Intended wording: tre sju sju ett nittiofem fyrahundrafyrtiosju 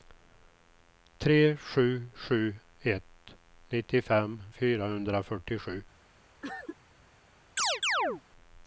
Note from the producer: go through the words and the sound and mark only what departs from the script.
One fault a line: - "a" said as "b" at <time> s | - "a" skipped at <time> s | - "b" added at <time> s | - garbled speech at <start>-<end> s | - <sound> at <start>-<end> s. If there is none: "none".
- cough at 6.4-6.8 s
- chirp at 7.6-8.2 s